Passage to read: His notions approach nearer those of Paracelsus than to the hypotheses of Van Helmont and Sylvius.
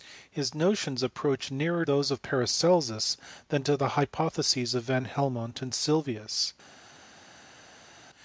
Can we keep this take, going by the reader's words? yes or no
yes